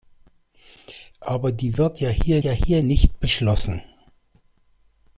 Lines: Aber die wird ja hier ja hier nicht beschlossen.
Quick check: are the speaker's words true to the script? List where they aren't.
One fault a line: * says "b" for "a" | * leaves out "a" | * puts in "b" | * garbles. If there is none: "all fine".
all fine